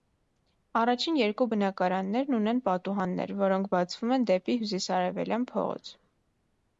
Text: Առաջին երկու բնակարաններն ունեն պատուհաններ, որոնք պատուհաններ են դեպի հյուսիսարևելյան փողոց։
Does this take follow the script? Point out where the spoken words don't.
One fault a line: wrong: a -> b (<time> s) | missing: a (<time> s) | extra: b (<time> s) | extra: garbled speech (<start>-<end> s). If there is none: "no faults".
wrong: պատուհաններ -> բացվում (3.8 s)